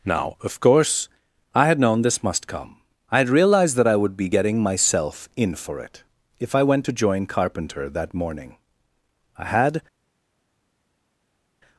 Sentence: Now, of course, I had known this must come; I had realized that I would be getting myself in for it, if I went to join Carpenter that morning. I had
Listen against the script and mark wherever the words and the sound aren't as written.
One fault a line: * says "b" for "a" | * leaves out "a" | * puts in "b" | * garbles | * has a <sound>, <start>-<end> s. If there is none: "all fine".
all fine